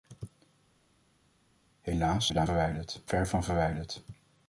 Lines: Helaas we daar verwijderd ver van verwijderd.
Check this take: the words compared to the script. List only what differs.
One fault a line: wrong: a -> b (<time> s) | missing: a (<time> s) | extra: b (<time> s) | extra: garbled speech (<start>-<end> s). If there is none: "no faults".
no faults